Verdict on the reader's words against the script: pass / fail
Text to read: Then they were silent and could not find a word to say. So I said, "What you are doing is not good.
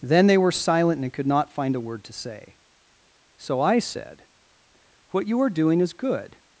fail